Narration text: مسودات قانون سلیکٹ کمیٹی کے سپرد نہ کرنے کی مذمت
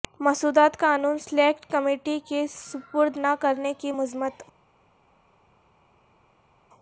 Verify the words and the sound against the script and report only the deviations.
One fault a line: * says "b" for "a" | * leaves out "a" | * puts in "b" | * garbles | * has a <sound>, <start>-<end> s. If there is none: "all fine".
all fine